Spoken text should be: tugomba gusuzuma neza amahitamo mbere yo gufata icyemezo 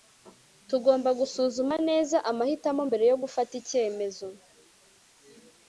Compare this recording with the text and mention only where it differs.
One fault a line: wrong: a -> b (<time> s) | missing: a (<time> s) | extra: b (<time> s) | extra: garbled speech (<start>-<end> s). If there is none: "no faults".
no faults